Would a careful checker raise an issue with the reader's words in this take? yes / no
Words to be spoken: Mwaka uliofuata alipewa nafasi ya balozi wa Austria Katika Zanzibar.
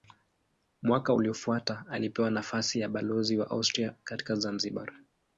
no